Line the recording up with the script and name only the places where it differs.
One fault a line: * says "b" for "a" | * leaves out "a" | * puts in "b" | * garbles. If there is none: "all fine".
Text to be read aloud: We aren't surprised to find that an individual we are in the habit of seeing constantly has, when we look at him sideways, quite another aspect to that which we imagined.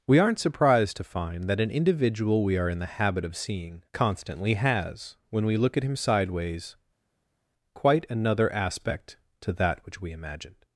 all fine